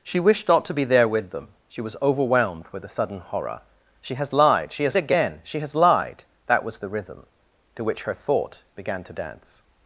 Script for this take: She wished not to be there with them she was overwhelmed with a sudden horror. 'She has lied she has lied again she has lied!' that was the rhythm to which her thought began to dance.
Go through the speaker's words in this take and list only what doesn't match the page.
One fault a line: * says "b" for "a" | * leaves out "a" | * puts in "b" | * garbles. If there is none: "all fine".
* leaves out "lied"